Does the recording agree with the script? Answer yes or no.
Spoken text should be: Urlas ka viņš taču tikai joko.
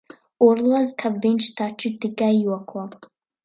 yes